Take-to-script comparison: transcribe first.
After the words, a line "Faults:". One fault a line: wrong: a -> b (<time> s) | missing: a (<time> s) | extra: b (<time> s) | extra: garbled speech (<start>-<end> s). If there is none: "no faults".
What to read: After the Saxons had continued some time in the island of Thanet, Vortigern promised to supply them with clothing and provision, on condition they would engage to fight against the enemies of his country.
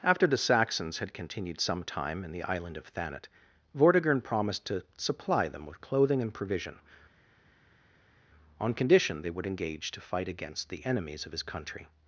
After the Saxons had continued some time in the island of Thanet, Vortigern promised to supply them with clothing and provision, on condition they would engage to fight against the enemies of his country.
Faults:
no faults